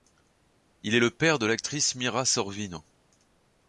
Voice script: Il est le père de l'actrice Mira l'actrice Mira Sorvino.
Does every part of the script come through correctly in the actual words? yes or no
no